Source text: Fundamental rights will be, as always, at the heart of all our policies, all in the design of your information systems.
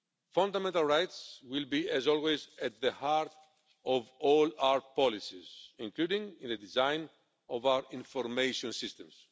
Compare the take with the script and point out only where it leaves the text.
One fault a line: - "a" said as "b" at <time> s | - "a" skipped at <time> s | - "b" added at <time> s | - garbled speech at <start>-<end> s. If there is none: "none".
- "all" said as "including" at 5.8 s
- "your" said as "our" at 7.7 s